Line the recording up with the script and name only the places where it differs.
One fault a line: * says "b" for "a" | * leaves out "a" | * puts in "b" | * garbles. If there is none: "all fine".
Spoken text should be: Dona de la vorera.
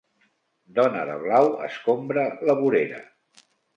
* puts in "blau escombra"